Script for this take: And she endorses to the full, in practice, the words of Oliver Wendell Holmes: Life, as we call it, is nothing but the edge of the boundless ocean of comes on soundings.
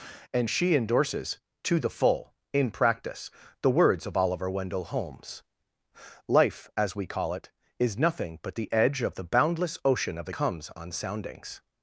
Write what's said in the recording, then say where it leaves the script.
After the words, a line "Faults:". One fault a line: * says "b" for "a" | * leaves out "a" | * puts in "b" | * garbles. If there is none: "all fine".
And she endorses to the full, in practice, the words of Oliver Wendell Holmes: Life, as we call it, is nothing but the edge of the boundless ocean of comes on soundings.
Faults:
all fine